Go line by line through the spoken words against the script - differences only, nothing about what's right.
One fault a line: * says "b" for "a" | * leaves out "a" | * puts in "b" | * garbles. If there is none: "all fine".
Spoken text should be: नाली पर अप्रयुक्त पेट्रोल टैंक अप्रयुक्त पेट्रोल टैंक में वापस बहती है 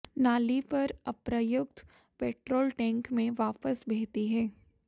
* leaves out "अप्रयुक्त पेट्रोल टैंक"